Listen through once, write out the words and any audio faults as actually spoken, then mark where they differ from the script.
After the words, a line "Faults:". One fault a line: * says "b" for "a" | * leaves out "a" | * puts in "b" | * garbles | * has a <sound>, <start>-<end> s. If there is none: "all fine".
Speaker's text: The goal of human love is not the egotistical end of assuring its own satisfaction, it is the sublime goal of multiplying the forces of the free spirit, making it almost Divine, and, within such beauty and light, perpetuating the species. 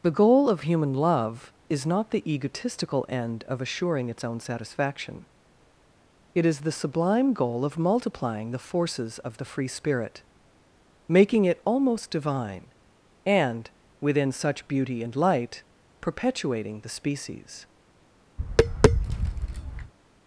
The goal of human love is not the egotistical end of assuring its own satisfaction, it is the sublime goal of multiplying the forces of the free spirit, making it almost Divine, and, within such beauty and light, perpetuating the species.
Faults:
* has a tap, 18.4-19.9 s